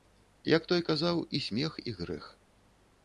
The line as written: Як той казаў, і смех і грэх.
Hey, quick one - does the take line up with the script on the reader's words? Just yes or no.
yes